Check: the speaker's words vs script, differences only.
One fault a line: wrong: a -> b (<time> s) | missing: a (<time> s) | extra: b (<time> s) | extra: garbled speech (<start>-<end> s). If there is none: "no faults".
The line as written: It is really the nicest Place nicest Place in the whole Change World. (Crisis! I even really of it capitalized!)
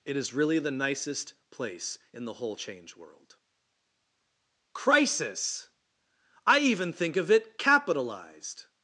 missing: nicest Place (2.0 s)
wrong: really -> think (6.9 s)